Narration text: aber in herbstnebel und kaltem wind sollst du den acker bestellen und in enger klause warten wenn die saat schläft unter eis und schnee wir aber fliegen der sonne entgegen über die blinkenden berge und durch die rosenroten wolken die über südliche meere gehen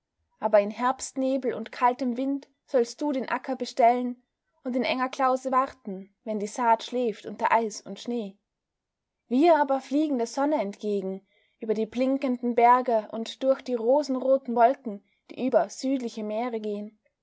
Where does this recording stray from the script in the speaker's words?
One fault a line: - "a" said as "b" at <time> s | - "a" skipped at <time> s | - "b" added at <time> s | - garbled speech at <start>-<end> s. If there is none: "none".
none